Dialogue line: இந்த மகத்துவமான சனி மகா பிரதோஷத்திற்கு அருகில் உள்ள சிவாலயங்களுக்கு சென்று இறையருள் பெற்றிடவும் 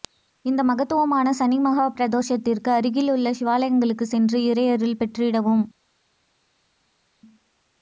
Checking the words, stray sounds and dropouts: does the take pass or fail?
pass